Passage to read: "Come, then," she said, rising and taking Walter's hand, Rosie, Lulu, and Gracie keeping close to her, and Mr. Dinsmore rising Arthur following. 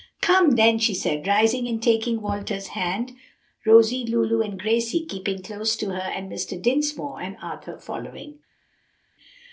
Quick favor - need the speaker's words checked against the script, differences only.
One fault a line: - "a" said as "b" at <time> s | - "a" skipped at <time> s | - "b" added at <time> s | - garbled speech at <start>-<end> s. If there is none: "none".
- "rising" said as "and" at 7.2 s